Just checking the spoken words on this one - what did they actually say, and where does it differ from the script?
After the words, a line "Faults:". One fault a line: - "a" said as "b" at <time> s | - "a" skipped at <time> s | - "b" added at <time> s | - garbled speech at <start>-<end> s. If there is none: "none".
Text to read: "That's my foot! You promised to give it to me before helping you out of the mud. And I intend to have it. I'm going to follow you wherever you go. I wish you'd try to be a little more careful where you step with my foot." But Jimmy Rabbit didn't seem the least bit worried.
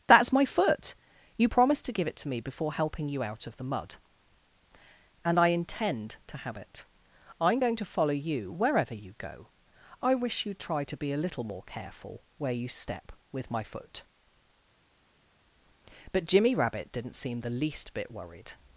"That's my foot! You promised to give it to me before helping you out of the mud. And I intend to have it. I'm going to follow you wherever you go. I wish you'd try to be a little more careful where you step with my foot." But Jimmy Rabbit didn't seem the least bit worried.
Faults:
none